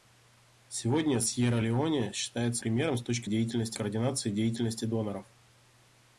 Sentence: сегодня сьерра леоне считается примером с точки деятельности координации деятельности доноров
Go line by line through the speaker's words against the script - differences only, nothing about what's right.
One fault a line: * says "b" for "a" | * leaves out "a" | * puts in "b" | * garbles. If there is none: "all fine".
all fine